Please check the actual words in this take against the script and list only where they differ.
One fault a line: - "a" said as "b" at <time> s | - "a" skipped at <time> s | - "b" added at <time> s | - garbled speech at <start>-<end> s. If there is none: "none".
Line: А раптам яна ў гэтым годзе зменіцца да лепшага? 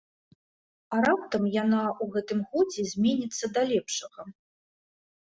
none